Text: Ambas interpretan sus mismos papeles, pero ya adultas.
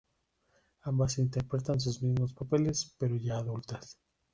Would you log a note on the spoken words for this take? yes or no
no